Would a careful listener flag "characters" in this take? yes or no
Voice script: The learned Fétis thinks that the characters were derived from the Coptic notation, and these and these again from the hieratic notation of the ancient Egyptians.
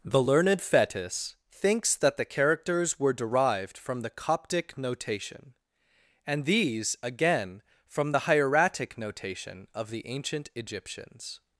no